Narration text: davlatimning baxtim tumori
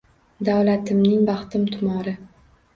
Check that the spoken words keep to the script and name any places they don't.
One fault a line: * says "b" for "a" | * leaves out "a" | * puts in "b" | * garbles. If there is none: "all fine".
all fine